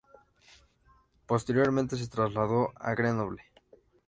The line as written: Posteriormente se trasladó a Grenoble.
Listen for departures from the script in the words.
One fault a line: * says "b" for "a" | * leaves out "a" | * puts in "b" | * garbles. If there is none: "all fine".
all fine